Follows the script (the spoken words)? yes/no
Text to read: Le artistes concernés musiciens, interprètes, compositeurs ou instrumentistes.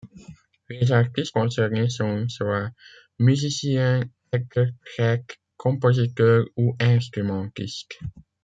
no